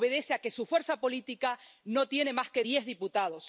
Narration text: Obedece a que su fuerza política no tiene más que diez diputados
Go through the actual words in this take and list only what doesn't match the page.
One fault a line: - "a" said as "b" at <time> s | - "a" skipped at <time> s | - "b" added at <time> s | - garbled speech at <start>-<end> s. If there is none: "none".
none